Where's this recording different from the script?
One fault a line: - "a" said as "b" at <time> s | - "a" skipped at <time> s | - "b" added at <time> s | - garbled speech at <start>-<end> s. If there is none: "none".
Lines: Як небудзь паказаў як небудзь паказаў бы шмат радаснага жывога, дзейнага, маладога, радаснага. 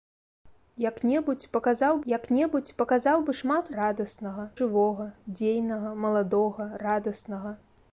none